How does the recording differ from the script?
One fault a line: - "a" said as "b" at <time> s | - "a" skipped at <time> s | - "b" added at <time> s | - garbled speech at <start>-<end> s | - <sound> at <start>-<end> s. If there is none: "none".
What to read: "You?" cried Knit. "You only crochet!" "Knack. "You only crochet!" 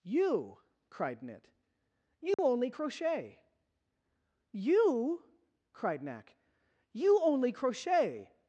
- dropout at 2.3-2.4 s
- "You cried" added at 4.5 s